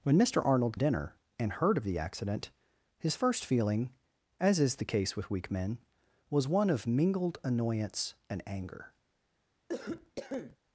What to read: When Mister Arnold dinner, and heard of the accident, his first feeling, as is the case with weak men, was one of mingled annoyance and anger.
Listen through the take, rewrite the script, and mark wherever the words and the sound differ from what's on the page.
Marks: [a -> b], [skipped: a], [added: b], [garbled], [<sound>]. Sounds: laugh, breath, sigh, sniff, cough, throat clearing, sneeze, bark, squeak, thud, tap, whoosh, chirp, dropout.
When Mister Arnold dinner, and heard of the accident, his first feeling, as is the case with weak men, was one of mingled annoyance and anger. [cough]